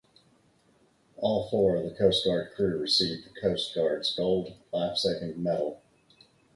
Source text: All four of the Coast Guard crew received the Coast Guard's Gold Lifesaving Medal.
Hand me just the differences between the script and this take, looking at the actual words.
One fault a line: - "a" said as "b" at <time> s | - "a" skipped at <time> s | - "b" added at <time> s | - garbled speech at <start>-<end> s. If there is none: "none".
none